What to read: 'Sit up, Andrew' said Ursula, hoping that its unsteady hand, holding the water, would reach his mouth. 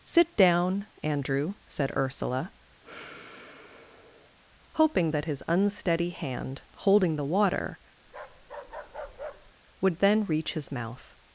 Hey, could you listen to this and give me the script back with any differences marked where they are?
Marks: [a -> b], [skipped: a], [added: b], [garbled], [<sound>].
'Sit [up, -> down] Andrew' said Ursula, [sigh] hoping that [its -> his] unsteady hand, holding the water, [bark] would [added: then] reach his mouth.